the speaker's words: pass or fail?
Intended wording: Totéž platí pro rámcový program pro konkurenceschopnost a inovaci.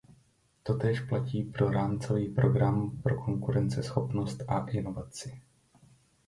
pass